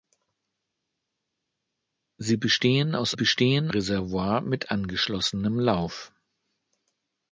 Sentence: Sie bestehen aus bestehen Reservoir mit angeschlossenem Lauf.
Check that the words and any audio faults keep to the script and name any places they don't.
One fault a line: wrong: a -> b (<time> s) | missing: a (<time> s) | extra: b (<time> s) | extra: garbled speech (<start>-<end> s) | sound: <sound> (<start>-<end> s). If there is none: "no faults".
no faults